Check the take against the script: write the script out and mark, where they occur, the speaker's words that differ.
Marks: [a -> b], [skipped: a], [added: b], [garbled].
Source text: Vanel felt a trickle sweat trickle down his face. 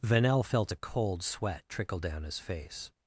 Vanel felt a [trickle -> cold] sweat trickle down his face.